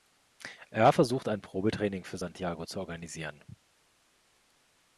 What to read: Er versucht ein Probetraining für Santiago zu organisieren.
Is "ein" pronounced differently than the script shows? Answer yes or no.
no